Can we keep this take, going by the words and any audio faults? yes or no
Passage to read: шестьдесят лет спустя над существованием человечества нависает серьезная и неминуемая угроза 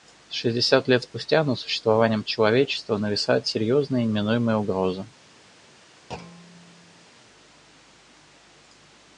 no